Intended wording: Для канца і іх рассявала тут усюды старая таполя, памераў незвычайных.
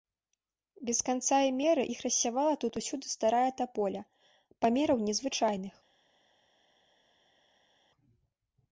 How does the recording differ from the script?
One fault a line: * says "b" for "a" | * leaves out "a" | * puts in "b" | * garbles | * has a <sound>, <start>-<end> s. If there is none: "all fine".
* says "Без" for "Для"
* puts in "меры"